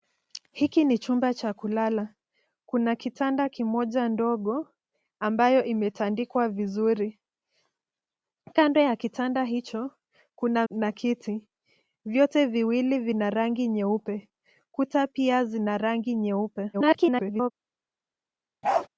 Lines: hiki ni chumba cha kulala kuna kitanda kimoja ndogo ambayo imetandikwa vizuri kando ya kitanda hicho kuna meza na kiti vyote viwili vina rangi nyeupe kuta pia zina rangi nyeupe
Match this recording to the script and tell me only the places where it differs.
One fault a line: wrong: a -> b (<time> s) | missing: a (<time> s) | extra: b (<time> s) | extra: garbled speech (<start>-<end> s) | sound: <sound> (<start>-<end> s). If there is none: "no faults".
missing: meza (10.7 s)
extra: garbled speech (16.7-17.5 s)
sound: bark (18.6-18.9 s)